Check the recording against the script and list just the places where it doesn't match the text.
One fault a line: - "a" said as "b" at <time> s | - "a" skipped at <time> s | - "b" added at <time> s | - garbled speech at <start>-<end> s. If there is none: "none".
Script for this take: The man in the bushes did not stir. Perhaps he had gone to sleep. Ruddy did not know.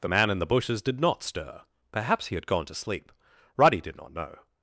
none